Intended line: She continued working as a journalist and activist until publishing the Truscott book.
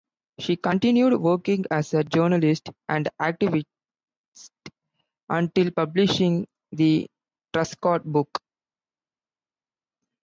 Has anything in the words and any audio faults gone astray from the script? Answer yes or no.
no